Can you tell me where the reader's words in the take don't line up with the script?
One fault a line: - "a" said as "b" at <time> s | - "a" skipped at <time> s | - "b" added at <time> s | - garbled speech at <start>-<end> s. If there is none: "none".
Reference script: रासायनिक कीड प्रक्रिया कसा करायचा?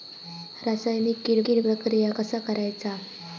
- "कीड" added at 1.5 s